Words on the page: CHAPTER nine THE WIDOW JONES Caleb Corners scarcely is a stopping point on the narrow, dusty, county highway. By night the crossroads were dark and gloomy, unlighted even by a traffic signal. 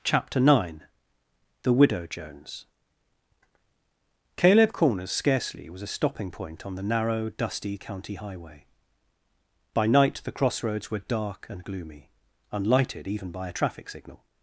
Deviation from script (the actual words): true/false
true